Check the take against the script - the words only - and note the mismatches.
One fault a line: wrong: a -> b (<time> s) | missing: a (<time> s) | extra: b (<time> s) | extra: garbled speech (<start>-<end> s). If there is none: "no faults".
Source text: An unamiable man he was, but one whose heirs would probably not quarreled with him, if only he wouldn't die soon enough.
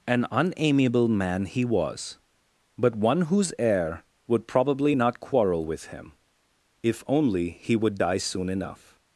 wrong: heirs -> heir (3.6 s)
wrong: quarreled -> quarrel (5.2 s)
wrong: wouldn't -> would (7.7 s)